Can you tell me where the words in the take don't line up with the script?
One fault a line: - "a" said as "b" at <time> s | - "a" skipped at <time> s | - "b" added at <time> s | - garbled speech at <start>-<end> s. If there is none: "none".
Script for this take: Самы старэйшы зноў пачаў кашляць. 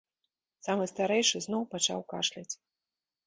none